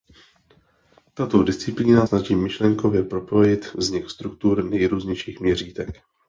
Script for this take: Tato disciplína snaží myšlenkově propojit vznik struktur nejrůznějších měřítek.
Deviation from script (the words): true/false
false